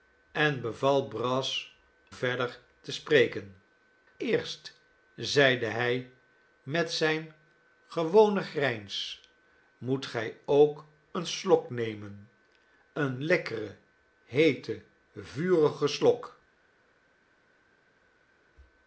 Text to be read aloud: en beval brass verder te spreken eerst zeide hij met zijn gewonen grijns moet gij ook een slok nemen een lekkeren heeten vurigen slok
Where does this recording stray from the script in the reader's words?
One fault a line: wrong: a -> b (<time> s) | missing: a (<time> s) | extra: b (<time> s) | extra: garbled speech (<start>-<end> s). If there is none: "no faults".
no faults